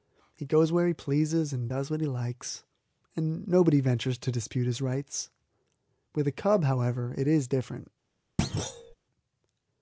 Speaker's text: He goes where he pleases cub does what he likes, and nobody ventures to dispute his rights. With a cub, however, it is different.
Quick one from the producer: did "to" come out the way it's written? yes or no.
yes